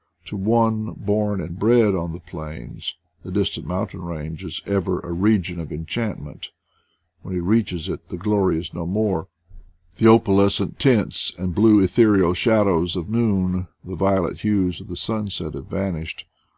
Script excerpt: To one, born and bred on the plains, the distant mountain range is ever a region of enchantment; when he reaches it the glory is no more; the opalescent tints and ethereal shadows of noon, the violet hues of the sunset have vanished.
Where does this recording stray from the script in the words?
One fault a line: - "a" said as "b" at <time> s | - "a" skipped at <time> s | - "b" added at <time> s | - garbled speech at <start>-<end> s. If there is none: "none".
- "blue" added at 11.5 s